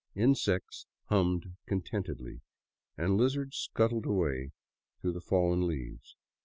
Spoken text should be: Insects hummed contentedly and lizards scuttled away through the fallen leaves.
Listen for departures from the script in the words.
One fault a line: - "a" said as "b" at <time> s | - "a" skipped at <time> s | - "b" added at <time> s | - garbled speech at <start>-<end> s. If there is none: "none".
none